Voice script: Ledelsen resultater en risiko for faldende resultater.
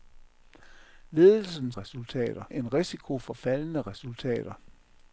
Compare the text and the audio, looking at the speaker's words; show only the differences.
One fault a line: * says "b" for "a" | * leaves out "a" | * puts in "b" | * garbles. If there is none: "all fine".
all fine